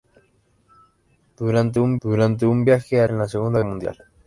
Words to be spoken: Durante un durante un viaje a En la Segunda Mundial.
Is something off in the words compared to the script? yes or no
no